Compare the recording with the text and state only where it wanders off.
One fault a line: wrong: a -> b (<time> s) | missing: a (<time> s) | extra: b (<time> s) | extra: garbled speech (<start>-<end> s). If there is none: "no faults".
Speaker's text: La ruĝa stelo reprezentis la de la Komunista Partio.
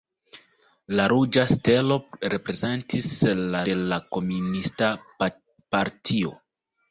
no faults